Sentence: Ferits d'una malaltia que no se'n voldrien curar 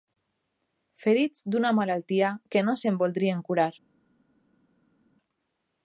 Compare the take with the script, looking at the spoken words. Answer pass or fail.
pass